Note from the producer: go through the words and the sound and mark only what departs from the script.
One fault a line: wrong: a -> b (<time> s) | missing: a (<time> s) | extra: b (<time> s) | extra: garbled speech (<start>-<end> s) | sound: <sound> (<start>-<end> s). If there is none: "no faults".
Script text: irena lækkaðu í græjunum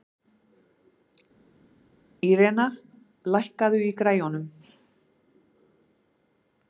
no faults